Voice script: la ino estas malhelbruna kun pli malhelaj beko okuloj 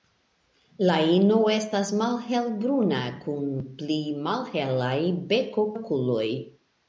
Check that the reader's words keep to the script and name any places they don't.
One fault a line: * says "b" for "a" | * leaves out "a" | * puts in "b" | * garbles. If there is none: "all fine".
all fine